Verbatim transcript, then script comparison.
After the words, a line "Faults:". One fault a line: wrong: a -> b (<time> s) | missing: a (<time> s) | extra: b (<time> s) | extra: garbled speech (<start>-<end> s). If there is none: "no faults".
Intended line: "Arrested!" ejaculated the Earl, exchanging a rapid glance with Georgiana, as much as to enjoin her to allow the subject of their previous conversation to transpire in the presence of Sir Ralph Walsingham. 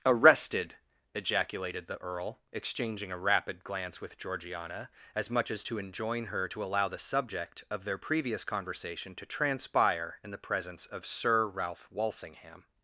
"Arrested!" ejaculated the Earl, exchanging a rapid glance with Georgiana, as much as to enjoin her to allow the subject of their previous conversation to transpire in the presence of Sir Ralph Walsingham.
Faults:
no faults